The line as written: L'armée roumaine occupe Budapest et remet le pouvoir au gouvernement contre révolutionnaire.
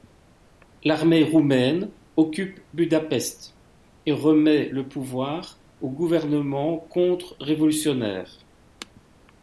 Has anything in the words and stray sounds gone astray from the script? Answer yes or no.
no